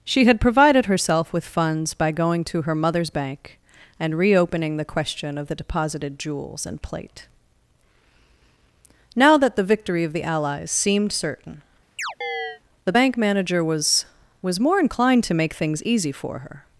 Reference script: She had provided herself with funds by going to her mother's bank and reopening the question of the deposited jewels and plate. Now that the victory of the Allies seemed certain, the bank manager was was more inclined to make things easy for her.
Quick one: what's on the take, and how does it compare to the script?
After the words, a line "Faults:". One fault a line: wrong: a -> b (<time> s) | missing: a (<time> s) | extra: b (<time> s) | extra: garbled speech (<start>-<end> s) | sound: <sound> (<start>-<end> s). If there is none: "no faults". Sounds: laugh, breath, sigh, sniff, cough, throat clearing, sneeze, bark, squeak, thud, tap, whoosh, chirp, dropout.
She had provided herself with funds by going to her mother's bank and reopening the question of the deposited jewels and plate. Now that the victory of the Allies seemed certain, the bank manager was was more inclined to make things easy for her.
Faults:
sound: chirp (12.0-12.6 s)